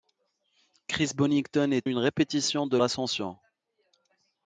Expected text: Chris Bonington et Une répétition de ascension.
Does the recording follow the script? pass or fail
pass